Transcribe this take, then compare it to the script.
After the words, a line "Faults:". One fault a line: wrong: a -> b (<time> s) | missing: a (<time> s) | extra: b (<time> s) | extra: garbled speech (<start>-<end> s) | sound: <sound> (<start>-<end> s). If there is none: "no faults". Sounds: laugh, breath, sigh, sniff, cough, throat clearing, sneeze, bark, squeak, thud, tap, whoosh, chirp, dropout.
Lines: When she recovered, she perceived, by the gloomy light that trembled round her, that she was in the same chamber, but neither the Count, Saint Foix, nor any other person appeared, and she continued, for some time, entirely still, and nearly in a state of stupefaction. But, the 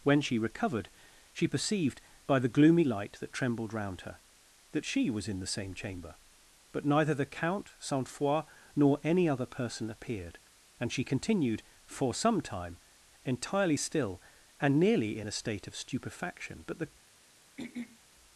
When she recovered, she perceived, by the gloomy light that trembled round her, that she was in the same chamber, but neither the Count, Saint Foix, nor any other person appeared, and she continued, for some time, entirely still, and nearly in a state of stupefaction. But, the
Faults:
sound: throat clearing (17.6-18.0 s)